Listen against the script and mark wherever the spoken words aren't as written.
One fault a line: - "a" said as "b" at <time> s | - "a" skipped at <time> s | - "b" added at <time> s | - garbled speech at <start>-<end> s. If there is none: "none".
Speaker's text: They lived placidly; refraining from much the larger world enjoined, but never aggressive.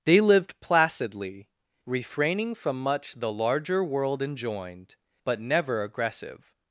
none